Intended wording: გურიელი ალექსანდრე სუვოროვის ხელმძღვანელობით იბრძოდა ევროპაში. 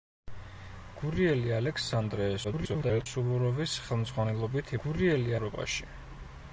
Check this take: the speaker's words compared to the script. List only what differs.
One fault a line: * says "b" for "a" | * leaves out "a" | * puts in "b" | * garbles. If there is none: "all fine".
* garbles
* says "გურიელი" for "იბრძოდა"